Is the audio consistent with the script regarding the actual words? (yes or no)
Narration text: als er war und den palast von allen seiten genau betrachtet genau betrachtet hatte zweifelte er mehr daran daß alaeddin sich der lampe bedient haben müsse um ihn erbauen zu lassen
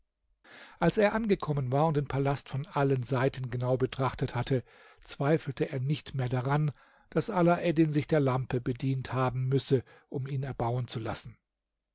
no